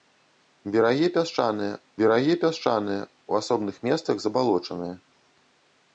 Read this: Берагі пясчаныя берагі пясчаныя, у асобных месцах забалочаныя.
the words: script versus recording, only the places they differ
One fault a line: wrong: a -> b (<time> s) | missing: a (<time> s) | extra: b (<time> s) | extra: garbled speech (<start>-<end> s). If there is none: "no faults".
no faults